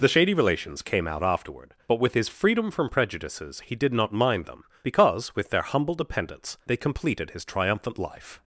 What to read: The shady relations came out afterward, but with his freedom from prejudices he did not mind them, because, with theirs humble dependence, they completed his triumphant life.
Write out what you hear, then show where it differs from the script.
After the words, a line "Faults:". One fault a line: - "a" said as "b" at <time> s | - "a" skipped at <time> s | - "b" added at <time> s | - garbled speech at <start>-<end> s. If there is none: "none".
The shady relations came out afterward, but with his freedom from prejudices he did not mind them, because, with their humble dependence, they completed his triumphant life.
Faults:
- "theirs" said as "their" at 5.5 s